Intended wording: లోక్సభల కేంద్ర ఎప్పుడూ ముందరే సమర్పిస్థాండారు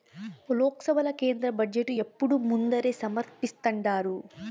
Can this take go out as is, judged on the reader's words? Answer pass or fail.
fail